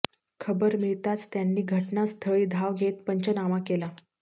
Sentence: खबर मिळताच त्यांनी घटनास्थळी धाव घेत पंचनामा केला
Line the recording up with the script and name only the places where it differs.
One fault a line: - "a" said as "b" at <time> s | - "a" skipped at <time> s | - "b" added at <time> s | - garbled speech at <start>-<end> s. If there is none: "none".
none